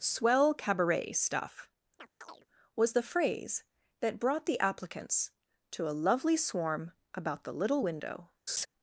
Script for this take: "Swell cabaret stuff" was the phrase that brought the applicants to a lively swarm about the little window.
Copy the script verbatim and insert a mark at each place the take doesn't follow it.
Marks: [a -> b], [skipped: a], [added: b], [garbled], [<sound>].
"Swell cabaret stuff" [chirp] was the phrase that brought the applicants to a [lively -> lovely] swarm about the little window. [laugh]